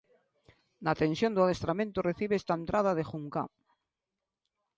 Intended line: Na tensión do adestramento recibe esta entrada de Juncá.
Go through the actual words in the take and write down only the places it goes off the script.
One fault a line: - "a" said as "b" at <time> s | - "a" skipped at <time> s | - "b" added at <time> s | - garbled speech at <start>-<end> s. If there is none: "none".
none